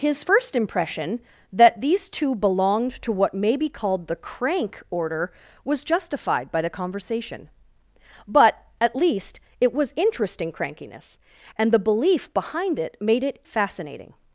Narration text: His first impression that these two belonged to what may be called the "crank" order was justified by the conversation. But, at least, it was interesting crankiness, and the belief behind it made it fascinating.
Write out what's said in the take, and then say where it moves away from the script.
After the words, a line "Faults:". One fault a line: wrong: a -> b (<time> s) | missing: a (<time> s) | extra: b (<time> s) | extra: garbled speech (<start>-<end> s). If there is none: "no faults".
His first impression that these two belonged to what may be called the "crank" order was justified by the conversation. But, at least, it was interesting crankiness, and the belief behind it made it fascinating.
Faults:
no faults